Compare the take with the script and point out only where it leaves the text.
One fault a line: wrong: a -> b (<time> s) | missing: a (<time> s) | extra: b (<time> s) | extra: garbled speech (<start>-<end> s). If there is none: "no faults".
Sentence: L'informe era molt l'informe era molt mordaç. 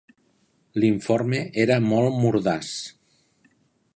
missing: l'informe era molt (2.2 s)